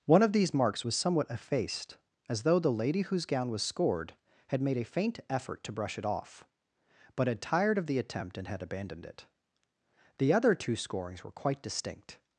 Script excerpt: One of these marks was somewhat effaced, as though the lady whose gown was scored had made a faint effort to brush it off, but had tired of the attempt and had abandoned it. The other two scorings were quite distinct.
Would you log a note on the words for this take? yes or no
no